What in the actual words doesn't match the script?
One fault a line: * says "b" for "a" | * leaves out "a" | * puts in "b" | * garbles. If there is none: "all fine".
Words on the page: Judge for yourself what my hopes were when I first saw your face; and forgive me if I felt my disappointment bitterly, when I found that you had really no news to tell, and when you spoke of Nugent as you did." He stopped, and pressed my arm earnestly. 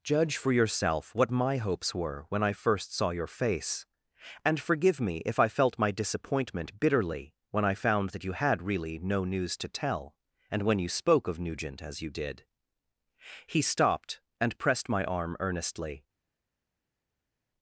all fine